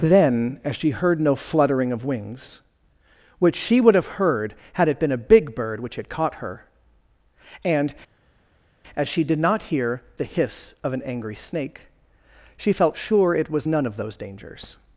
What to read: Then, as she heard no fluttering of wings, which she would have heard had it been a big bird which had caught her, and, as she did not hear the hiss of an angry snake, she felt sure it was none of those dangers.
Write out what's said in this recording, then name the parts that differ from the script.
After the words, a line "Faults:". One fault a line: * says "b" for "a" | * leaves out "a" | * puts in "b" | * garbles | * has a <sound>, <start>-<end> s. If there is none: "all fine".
Then, as she heard no fluttering of wings, which she would have heard had it been a big bird which had caught her, and, as she did not hear the hiss of an angry snake, she felt sure it was none of those dangers.
Faults:
all fine